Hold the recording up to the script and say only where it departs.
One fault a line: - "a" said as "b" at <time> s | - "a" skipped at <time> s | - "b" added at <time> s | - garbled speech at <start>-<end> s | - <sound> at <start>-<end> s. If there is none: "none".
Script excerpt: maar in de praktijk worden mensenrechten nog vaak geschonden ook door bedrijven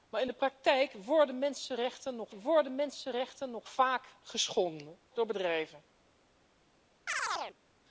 - "worden mensenrechten nog" added at 2.3 s
- "ook" skipped at 5.0 s
- chirp at 7.1-7.6 s